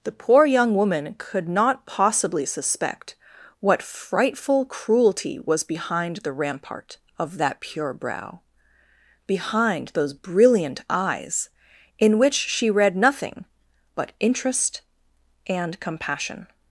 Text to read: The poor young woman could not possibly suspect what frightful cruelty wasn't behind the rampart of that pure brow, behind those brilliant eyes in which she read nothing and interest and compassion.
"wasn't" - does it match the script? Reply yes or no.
no